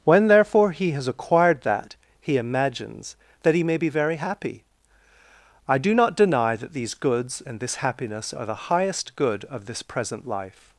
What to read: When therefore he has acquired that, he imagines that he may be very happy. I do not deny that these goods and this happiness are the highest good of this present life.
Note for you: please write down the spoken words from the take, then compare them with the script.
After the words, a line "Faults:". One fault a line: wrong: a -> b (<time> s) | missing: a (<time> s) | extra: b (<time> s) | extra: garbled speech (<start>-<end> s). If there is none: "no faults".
When therefore he has acquired that, he imagines that he may be very happy. I do not deny that these goods and this happiness are the highest good of this present life.
Faults:
no faults